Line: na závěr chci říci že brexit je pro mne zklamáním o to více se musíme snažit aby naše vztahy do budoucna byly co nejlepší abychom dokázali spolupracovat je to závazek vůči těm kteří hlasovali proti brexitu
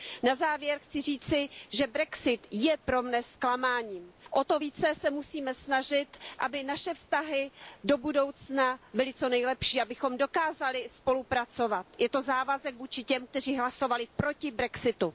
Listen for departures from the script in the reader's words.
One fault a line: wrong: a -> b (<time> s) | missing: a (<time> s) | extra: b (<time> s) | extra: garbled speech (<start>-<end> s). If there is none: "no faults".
no faults